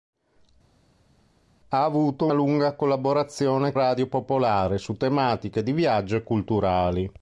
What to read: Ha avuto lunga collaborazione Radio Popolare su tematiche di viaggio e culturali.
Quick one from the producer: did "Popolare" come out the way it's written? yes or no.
yes